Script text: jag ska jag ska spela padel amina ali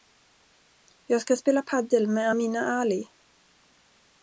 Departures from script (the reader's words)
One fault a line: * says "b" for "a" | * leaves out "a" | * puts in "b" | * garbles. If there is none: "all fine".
* leaves out "jag ska"
* puts in "med"